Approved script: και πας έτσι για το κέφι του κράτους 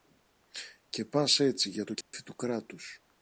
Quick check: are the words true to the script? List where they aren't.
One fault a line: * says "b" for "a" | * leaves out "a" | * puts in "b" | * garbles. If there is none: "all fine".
all fine